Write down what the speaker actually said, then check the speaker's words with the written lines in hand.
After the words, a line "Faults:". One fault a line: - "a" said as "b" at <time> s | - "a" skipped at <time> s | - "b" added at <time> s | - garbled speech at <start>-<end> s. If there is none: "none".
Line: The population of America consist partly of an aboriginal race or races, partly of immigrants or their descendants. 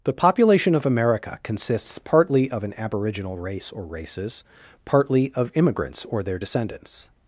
The population of America consists partly of an aboriginal race or races, partly of immigrants or their descendants.
Faults:
- "consist" said as "consists" at 1.4 s